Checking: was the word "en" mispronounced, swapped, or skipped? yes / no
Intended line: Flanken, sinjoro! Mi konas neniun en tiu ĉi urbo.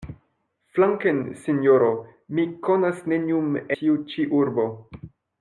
yes